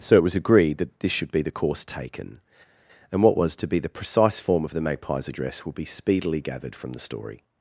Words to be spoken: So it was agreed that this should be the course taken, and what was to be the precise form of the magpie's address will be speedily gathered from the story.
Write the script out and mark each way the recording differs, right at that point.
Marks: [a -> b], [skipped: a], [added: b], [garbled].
So it was agreed that this should be the course taken, and what was to be the precise form of the magpie's address will be speedily gathered from the story.